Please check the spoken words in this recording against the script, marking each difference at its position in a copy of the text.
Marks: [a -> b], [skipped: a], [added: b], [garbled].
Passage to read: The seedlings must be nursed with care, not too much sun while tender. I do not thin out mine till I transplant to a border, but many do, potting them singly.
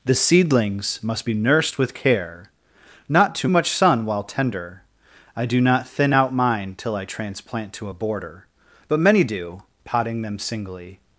The seedlings must be nursed with care, not too much sun while tender. I do not thin out mine till I transplant to a border, but many do, potting them singly.